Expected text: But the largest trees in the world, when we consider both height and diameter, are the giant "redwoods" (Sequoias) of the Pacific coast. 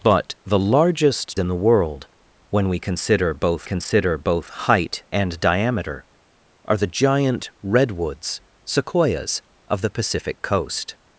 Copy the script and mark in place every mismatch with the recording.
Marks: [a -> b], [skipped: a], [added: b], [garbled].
But the largest [skipped: trees] in the world, when we consider both [added: consider both] height and diameter, are the giant "redwoods" (Sequoias) of the Pacific coast.